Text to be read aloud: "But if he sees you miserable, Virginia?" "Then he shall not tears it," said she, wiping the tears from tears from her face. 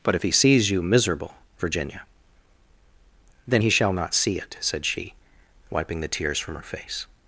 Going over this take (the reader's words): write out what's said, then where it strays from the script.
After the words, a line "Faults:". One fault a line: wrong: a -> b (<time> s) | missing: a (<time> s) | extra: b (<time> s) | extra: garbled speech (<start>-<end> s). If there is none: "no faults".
"But if he sees you miserable, Virginia?" "Then he shall not see it," said she, wiping the tears from her face.
Faults:
wrong: tears -> see (4.1 s)
missing: tears from (6.5 s)